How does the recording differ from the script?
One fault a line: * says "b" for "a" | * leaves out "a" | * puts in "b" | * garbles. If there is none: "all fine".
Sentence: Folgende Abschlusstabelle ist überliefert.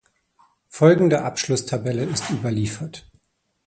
all fine